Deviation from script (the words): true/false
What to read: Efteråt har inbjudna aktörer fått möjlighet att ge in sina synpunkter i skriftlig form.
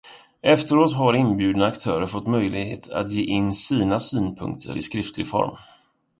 false